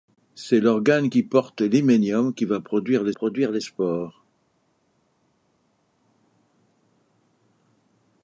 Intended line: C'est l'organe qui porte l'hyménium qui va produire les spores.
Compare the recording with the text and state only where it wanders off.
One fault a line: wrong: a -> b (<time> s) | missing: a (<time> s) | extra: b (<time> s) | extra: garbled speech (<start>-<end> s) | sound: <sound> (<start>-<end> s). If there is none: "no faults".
extra: produire les (3.1 s)